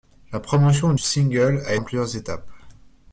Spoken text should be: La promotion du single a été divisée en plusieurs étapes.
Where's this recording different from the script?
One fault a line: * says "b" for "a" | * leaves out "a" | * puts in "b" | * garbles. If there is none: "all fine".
* leaves out "du"
* leaves out "été divisée"